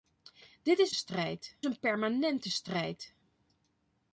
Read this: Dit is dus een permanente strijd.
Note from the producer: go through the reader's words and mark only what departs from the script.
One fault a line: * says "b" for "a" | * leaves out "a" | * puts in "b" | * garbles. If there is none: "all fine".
* says "strijd" for "dus"